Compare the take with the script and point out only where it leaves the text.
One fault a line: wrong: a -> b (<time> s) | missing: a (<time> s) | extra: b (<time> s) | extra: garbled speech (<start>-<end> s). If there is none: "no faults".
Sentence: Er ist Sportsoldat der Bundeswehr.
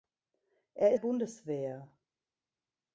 missing: ist Sportsoldat der (0.9 s)